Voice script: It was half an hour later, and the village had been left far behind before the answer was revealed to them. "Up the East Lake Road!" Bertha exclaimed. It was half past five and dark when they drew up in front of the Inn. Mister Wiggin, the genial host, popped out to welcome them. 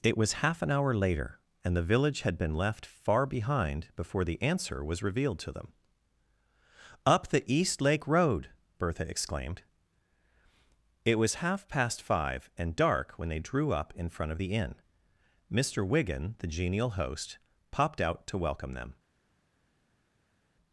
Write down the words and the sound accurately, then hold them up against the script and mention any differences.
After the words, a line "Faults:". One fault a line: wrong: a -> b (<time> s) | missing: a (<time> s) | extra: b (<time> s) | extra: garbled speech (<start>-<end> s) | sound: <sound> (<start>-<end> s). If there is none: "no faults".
It was half an hour later, and the village had been left far behind before the answer was revealed to them. "Up the East Lake Road!" Bertha exclaimed. It was half past five and dark when they drew up in front of the Inn. Mister Wiggin, the genial host, popped out to welcome them.
Faults:
no faults